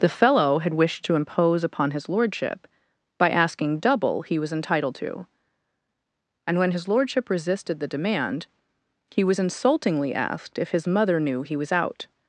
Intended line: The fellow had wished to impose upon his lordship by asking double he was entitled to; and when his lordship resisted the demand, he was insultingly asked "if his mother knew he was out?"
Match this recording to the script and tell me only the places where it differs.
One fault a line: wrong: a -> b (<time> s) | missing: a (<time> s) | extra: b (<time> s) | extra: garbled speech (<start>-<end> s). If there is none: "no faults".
no faults